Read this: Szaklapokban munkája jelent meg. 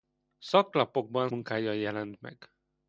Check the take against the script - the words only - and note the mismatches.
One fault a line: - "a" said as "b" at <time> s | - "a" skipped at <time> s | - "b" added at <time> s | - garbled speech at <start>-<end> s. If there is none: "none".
none